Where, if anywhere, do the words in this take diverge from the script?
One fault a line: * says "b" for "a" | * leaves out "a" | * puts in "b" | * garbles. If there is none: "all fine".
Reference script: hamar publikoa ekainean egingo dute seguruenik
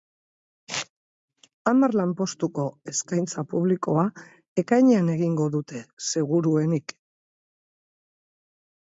* puts in "lanpostuko eskaintza"